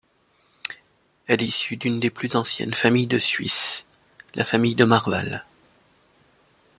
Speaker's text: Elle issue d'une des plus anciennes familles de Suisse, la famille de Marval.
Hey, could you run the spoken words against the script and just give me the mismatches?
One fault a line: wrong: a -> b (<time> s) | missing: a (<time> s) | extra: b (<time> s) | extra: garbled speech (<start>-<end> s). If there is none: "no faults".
no faults